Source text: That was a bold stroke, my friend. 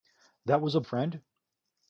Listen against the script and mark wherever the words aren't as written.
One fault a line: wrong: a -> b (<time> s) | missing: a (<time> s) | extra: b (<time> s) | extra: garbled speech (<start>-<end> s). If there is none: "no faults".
missing: bold stroke my (0.8 s)